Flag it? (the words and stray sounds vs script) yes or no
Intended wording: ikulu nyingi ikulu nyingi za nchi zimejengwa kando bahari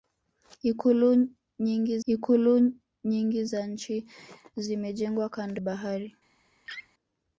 yes